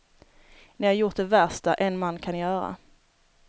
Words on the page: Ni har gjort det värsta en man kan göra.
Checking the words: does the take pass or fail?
pass